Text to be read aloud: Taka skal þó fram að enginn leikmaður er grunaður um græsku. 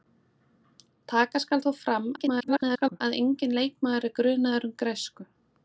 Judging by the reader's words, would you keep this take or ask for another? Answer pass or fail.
fail